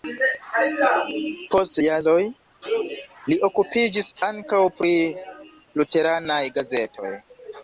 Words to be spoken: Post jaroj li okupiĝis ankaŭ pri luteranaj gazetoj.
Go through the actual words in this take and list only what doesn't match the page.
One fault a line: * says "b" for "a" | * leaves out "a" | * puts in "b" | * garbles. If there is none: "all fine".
all fine